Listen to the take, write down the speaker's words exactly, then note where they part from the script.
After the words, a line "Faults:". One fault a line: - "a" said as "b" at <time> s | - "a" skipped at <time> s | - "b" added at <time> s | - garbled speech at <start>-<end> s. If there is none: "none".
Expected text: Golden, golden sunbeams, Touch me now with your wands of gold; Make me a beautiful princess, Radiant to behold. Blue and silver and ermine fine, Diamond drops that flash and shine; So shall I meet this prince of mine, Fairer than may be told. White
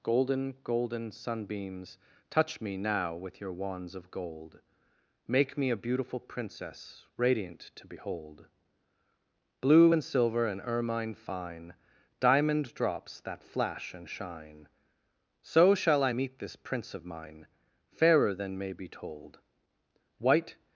Golden, golden sunbeams, Touch me now with your wands of gold; Make me a beautiful princess, Radiant to behold. Blue and silver and ermine fine, Diamond drops that flash and shine; So shall I meet this prince of mine, Fairer than may be told. White
Faults:
none